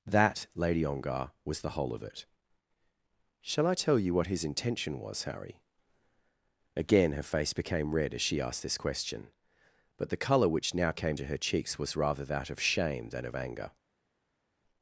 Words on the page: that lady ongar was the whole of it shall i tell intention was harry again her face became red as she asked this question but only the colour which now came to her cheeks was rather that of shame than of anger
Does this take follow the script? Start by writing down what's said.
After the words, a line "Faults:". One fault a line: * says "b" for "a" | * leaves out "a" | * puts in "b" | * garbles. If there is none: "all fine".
that lady ongar was the whole of it shall i tell you what his intention was harry again her face became red as she asked this question but the colour which now came to her cheeks was rather that of shame than of anger
Faults:
* puts in "you what his"
* leaves out "only"